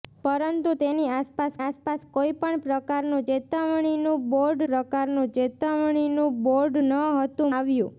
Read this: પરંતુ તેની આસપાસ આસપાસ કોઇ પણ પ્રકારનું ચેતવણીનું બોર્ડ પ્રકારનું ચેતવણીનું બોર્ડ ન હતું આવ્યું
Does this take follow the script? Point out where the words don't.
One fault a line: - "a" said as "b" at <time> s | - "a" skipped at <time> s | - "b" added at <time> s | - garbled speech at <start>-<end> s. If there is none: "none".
none